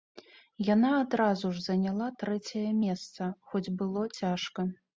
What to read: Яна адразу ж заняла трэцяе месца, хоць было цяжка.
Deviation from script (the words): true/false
false